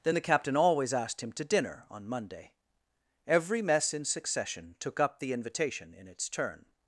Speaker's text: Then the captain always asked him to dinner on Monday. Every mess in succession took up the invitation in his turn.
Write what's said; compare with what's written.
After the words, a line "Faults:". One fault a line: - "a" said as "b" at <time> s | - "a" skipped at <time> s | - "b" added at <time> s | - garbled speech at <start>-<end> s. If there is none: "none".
Then the captain always asked him to dinner on Monday. Every mess in succession took up the invitation in its turn.
Faults:
- "his" said as "its" at 6.1 s